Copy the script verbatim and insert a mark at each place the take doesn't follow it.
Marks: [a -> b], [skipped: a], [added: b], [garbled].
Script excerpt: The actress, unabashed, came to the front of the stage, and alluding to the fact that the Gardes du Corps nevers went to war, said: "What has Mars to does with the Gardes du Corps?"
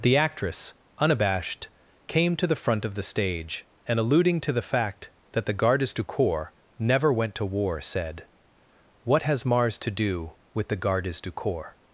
The actress, unabashed, came to the front of the stage, and alluding to the fact that the Gardes du Corps [nevers -> never] went to war, said: "What has Mars to [does -> do] with the Gardes du Corps?"